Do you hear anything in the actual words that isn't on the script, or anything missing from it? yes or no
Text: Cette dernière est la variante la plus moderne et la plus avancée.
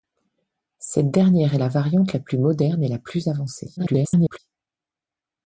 yes